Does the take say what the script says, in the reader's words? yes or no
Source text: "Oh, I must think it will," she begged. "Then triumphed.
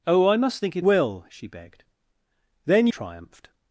yes